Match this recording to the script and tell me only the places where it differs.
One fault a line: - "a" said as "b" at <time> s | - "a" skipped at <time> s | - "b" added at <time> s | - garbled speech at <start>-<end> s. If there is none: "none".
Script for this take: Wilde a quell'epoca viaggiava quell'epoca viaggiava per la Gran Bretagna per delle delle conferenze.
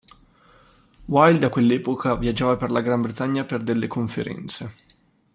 - "quell'epoca viaggiava" skipped at 2.6 s
- "delle" skipped at 3.9 s